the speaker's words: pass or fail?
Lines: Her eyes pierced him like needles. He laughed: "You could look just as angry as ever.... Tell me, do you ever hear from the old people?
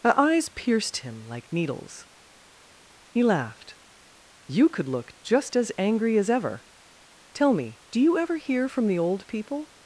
pass